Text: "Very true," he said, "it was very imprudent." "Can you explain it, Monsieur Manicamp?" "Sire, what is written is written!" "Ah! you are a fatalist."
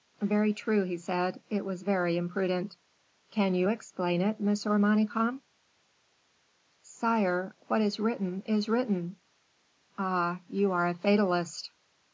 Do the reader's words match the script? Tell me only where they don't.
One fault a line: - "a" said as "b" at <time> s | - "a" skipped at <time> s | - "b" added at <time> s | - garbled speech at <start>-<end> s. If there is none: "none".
none